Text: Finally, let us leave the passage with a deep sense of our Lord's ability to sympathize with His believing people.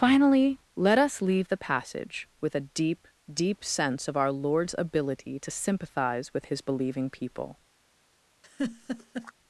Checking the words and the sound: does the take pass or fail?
fail